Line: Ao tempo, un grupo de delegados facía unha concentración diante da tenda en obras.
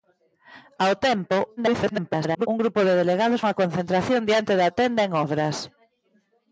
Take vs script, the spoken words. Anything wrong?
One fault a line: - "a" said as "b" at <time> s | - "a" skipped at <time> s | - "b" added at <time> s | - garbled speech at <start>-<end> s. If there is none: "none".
- garbled speech at 1.6-2.5 s
- "facía" skipped at 3.4 s